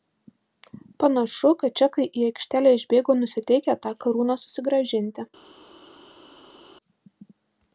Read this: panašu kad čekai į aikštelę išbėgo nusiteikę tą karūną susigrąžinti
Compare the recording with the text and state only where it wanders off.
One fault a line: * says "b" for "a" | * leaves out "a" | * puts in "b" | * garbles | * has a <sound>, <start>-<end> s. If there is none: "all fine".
all fine